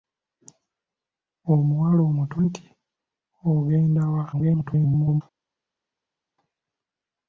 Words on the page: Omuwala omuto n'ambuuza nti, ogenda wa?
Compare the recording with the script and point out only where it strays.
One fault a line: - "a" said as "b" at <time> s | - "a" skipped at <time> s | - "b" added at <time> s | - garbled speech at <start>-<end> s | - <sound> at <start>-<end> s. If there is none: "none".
- "n'ambuuza" skipped at 2.4 s
- garbled speech at 4.3-5.2 s